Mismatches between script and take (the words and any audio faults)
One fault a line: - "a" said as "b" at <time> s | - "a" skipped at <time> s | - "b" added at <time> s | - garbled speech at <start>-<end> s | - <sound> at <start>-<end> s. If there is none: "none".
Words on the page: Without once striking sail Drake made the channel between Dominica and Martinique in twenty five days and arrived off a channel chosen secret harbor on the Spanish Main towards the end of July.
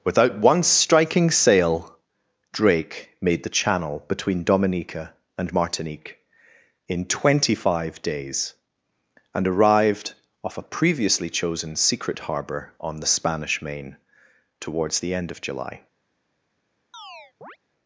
- "channel" said as "previously" at 10.6 s
- chirp at 16.9-17.6 s